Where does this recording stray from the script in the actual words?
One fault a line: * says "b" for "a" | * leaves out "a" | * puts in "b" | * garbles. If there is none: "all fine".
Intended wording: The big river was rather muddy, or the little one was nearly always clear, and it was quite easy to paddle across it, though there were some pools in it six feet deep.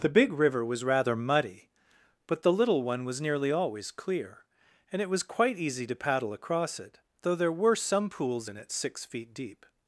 * says "but" for "or"